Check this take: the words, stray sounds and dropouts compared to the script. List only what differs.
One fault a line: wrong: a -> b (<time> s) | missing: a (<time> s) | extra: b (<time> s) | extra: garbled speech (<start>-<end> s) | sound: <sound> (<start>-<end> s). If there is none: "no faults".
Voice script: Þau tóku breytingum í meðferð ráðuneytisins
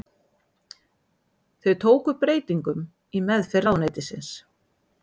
no faults